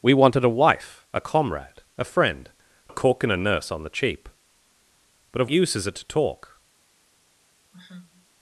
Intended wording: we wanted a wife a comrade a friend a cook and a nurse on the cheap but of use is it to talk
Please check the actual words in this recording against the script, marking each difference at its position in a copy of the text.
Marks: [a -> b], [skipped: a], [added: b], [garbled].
we wanted a wife a comrade a friend a cook and a nurse on the cheap but of use is it to talk